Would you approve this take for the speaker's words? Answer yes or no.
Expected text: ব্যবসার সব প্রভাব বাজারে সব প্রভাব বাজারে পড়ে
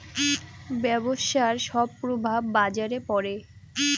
no